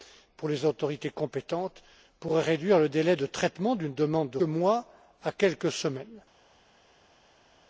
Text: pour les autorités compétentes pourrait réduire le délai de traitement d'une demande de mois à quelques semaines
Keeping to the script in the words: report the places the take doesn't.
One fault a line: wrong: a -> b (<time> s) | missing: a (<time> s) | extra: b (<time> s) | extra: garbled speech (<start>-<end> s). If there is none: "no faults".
no faults